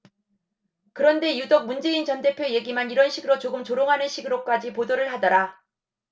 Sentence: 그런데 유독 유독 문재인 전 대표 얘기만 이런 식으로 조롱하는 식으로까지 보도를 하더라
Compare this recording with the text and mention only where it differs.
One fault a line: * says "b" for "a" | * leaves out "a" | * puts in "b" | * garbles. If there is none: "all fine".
* leaves out "유독"
* puts in "조금"